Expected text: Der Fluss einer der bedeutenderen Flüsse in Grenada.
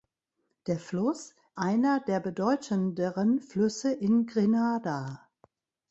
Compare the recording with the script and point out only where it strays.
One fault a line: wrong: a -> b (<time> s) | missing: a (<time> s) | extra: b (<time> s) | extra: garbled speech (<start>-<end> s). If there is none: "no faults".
no faults